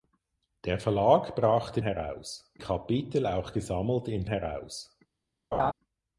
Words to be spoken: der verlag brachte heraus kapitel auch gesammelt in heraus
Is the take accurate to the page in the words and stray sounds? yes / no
no